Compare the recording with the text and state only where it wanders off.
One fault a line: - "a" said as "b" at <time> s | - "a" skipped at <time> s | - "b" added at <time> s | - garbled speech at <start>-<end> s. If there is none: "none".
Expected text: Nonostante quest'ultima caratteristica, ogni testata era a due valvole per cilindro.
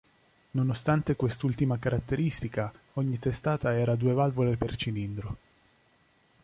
none